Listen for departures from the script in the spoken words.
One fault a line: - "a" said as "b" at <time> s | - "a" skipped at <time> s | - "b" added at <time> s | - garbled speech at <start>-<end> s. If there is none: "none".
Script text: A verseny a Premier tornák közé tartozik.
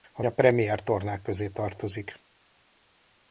- "verseny" skipped at 0.2 s